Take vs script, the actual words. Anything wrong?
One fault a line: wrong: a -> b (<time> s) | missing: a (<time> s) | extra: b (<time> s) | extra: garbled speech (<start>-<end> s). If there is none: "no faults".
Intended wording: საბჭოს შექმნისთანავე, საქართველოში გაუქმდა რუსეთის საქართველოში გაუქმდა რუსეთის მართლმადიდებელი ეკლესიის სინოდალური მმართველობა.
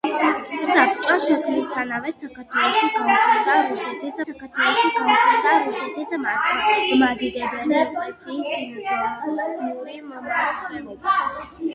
no faults